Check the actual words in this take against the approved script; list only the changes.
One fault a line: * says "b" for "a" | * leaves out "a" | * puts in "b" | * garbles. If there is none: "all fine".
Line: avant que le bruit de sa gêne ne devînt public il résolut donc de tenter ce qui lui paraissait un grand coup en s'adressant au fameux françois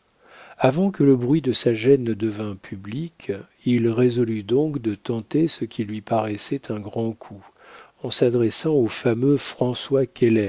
all fine